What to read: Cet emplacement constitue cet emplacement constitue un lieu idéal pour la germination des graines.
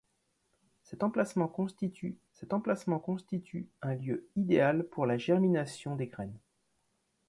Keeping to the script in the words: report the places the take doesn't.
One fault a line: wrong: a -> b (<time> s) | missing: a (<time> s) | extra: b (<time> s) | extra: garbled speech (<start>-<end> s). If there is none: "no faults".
no faults